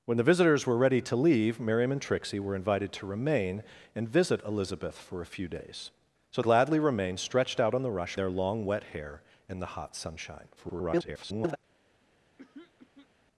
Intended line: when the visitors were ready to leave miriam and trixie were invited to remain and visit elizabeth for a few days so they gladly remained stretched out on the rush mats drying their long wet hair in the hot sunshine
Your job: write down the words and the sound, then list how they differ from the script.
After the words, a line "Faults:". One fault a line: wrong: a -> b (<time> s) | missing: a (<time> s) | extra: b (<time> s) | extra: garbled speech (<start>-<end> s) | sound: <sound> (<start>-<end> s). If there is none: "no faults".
when the visitors were ready to leave miriam and trixie were invited to remain and visit elizabeth for a few days so gladly remained stretched out on the rush their long wet hair in the hot sunshine [garbled]
Faults:
missing: they (6.4 s)
missing: mats drying (8.2 s)
extra: garbled speech (10.6-11.6 s)
sound: throat clearing (12.4-13.1 s)